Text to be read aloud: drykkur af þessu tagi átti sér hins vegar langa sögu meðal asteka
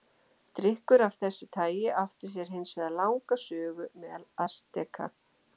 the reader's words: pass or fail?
pass